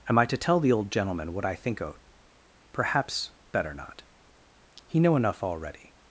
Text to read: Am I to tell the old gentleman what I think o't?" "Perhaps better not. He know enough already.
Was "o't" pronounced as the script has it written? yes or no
yes